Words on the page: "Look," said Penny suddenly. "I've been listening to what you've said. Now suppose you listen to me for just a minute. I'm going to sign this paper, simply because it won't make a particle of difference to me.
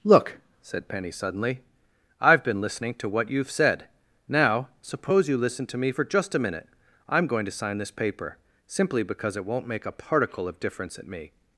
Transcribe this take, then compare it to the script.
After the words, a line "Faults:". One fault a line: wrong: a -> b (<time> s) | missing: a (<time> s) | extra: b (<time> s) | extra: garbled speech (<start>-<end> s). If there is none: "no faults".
"Look," said Penny suddenly. "I've been listening to what you've said. Now suppose you listen to me for just a minute. I'm going to sign this paper, simply because it won't make a particle of difference at me.
Faults:
wrong: to -> at (11.0 s)